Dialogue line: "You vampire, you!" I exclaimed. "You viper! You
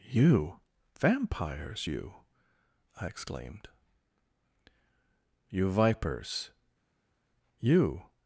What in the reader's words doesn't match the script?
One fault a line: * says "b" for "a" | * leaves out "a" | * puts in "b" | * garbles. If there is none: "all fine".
* says "vampires" for "vampire"
* says "vipers" for "viper"